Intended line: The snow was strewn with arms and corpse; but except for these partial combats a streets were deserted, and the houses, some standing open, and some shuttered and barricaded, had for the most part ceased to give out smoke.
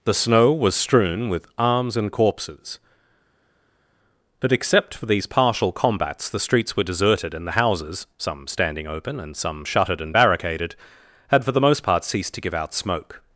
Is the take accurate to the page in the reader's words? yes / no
no